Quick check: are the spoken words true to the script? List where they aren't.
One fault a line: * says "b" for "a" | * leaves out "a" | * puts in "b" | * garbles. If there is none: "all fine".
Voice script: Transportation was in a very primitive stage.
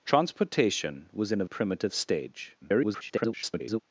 * leaves out "very"
* garbles